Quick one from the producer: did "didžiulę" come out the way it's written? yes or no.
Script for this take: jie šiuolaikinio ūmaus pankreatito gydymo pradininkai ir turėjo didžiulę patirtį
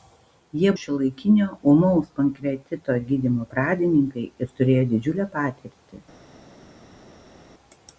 yes